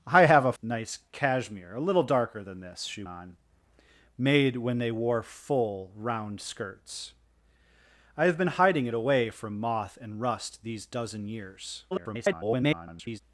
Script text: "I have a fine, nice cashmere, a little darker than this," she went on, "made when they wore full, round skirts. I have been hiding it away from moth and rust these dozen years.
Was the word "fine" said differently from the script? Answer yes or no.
yes